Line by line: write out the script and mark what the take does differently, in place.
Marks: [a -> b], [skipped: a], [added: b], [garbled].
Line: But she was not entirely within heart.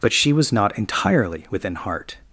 But she was not entirely within heart.